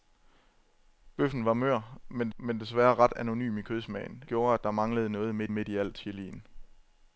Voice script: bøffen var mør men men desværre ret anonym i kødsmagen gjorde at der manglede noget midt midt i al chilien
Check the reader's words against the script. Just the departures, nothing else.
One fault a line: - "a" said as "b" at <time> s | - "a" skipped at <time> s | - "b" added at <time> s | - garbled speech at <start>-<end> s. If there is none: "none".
none